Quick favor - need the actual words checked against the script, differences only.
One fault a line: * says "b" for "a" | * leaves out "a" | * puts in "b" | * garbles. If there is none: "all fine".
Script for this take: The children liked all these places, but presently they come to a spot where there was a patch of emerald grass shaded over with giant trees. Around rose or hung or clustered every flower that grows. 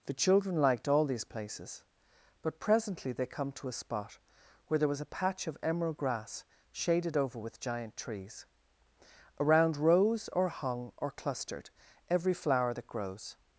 all fine